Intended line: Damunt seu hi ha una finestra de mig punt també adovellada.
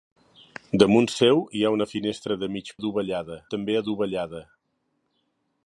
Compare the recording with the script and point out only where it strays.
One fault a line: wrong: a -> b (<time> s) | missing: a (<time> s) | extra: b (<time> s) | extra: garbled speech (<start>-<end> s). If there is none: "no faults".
wrong: punt -> adovellada (2.8 s)